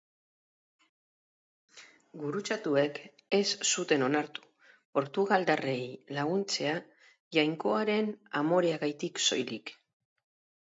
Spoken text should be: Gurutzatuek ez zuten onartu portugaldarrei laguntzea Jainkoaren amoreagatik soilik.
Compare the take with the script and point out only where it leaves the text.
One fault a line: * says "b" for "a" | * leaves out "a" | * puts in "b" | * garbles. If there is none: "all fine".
all fine